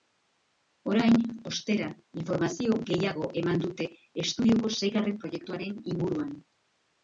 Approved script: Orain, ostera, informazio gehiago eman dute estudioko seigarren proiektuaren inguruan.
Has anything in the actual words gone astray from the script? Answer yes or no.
no